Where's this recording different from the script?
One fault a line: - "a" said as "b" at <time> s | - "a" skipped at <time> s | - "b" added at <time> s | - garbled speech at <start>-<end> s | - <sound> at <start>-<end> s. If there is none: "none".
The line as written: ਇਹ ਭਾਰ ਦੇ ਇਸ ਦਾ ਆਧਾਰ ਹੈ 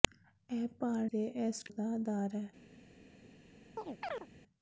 - chirp at 3.8-4.3 s